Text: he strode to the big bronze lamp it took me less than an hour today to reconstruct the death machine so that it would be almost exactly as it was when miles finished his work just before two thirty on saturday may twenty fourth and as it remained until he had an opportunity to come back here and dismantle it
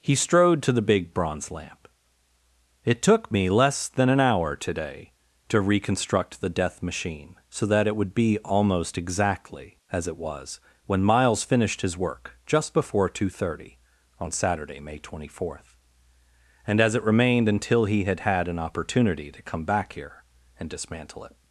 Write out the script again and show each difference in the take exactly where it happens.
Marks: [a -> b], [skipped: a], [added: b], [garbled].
he strode to the big bronze lamp it took me less than an hour today to reconstruct the death machine so that it would be almost exactly as it was when miles finished his work just before two thirty on saturday may twenty fourth and as it remained until he had [added: had] an opportunity to come back here and dismantle it